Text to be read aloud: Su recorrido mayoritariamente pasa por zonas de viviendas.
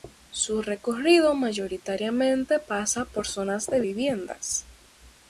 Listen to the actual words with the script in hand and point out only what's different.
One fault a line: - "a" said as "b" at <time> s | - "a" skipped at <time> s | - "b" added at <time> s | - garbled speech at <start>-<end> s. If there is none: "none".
none